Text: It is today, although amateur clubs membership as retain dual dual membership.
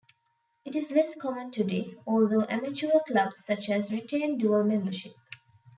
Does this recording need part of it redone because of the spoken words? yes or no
yes